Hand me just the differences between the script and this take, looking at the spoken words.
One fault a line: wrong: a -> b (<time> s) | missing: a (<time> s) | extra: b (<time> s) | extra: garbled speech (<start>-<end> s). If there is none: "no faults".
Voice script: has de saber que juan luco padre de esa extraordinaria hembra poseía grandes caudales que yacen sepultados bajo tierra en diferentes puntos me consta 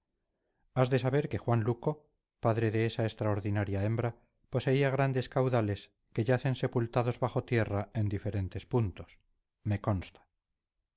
no faults